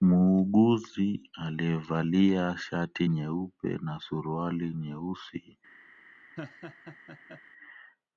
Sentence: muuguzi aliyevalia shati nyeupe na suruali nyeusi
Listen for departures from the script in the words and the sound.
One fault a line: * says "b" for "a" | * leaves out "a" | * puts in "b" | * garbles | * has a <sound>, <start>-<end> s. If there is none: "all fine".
* has a laugh, 6.4-7.4 s